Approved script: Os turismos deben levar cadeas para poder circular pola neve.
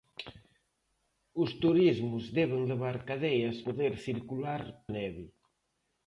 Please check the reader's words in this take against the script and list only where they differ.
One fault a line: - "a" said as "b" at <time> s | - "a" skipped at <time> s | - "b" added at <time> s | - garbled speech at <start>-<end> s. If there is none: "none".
- "para" skipped at 3.6 s
- "pola" skipped at 4.6 s